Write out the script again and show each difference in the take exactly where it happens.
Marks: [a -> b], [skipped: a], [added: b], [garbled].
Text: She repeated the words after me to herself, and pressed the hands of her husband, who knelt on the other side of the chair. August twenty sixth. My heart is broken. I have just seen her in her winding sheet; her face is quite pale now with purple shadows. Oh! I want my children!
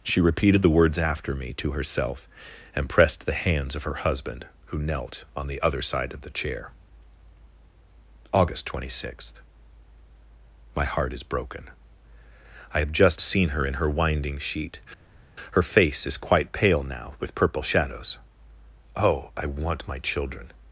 She repeated the words after me to herself, and pressed the hands of her husband, who knelt on the other side of the chair. August twenty sixth. My heart is broken. I have just seen her in her winding sheet; her face is quite pale now with purple shadows. Oh! I want my children!